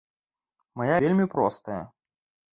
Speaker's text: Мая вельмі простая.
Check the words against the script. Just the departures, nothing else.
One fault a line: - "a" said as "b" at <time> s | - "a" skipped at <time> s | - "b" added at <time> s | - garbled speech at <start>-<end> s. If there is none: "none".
none